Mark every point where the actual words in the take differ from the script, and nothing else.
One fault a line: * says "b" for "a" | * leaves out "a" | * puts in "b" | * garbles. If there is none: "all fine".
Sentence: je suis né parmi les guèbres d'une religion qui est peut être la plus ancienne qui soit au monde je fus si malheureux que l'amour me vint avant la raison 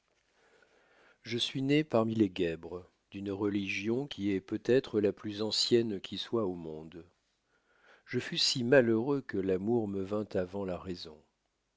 all fine